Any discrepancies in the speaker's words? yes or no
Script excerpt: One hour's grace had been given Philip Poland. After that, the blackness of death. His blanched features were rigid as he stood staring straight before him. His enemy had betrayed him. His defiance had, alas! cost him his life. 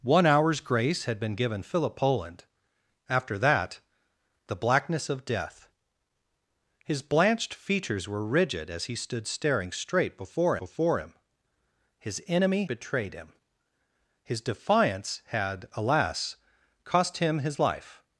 yes